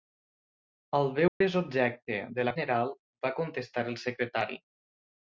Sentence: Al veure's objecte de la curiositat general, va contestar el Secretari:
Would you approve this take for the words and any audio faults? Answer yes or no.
no